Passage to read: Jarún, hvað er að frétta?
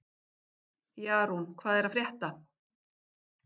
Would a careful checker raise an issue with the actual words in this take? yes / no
no